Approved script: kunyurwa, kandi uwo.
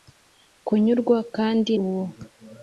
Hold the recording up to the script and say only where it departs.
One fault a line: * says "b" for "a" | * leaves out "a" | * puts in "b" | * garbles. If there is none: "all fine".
all fine